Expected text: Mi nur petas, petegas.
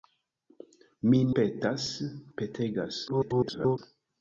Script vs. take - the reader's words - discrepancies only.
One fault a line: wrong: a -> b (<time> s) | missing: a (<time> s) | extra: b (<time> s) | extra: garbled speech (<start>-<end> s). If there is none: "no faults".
missing: nur (1.2 s)
extra: garbled speech (3.1-3.8 s)